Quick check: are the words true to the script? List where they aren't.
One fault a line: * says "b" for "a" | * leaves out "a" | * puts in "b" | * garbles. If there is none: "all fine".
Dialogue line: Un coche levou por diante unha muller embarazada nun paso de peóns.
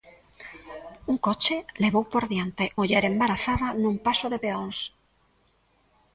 * leaves out "unha"